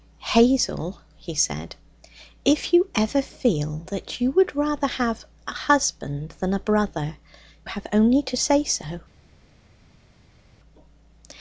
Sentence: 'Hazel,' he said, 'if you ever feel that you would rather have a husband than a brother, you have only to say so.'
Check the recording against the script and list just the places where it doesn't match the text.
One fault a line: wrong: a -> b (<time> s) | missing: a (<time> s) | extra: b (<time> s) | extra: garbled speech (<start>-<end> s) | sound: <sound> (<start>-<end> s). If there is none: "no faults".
missing: you (7.2 s)